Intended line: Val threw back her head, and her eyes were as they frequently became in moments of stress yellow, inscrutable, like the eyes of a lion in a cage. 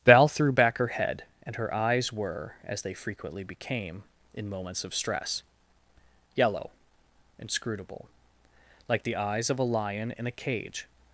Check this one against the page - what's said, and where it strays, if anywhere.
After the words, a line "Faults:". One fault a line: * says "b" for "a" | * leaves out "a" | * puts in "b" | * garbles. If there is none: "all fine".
Val threw back her head, and her eyes were as they frequently became in moments of stress yellow, inscrutable, like the eyes of a lion in a cage.
Faults:
all fine